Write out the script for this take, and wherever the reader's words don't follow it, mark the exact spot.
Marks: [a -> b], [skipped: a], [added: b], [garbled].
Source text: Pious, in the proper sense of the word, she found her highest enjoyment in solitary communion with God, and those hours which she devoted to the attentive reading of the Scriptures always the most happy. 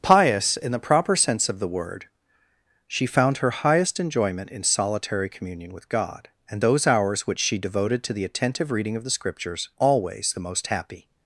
Pious, in the proper sense of the word, she found her highest enjoyment in solitary communion with God, and those hours which she devoted to the attentive reading of the Scriptures always the most happy.